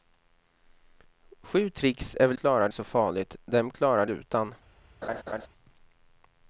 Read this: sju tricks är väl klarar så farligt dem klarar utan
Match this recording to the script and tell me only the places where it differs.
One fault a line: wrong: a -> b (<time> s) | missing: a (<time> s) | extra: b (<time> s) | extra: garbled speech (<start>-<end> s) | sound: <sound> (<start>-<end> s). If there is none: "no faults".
sound: laugh (5.0-5.5 s)